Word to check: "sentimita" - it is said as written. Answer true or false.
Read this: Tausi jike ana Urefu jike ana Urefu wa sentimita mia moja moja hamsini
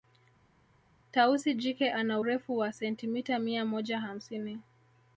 true